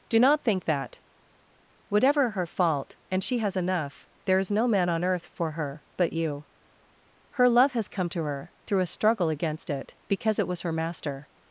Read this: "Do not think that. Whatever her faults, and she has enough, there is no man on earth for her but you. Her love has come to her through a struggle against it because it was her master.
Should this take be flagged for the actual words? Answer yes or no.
yes